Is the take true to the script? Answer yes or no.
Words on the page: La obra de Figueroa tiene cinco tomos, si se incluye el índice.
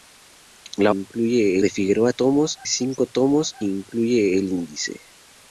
no